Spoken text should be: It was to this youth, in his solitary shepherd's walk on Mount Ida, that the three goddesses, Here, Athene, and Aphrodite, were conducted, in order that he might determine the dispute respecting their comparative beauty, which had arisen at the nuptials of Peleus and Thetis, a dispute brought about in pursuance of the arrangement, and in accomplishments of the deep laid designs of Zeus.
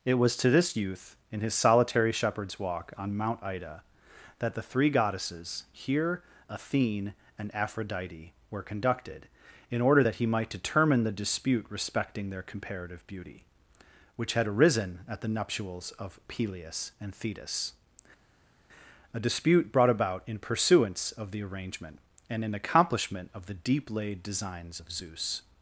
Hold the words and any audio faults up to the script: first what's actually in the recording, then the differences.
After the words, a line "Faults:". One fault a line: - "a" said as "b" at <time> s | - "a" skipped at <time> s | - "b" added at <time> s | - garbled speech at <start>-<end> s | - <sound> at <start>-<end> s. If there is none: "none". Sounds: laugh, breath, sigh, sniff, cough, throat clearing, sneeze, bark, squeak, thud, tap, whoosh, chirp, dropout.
It was to this youth, in his solitary shepherd's walk on Mount Ida, that the three goddesses, Here, Athene, and Aphrodite, were conducted, in order that he might determine the dispute respecting their comparative beauty, which had arisen at the nuptials of Peleus and Thetis, a dispute brought about in pursuance of the arrangement, and in accomplishment of the deep laid designs of Zeus.
Faults:
- "accomplishments" said as "accomplishment" at 22.5 s